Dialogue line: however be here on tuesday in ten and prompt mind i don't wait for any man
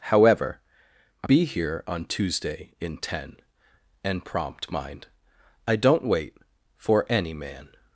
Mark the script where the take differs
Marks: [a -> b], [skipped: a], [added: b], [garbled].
however be here on tuesday in ten and prompt mind i don't wait for any man